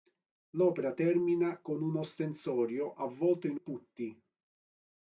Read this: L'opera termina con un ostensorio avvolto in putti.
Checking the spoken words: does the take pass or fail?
pass